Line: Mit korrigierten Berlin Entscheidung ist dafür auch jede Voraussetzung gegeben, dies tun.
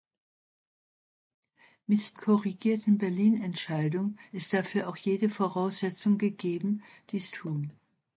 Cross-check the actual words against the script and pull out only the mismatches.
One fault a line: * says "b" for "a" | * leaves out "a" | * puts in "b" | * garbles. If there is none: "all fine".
all fine